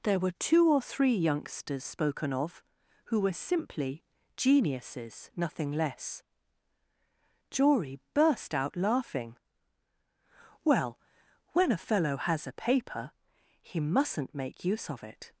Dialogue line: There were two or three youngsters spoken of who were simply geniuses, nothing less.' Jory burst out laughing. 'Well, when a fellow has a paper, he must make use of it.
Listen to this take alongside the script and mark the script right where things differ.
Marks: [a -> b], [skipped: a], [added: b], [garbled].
There were two or three youngsters spoken of who were simply geniuses, nothing less.' Jory burst out laughing. 'Well, when a fellow has a paper, he [must -> mustn't] make use of it.